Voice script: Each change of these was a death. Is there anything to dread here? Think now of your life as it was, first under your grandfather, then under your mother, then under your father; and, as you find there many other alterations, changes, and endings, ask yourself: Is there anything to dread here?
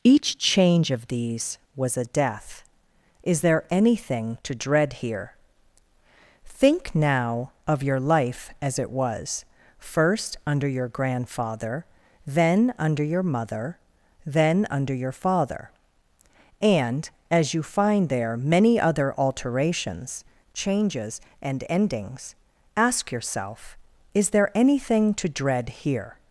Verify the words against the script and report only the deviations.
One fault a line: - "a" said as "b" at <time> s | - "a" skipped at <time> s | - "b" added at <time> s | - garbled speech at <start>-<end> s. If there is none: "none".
none